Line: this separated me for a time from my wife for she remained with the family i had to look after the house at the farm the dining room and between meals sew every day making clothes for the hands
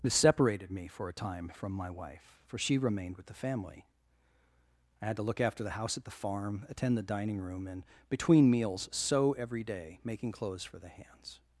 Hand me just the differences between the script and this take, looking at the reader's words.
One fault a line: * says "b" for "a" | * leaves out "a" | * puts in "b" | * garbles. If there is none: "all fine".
* puts in "attend"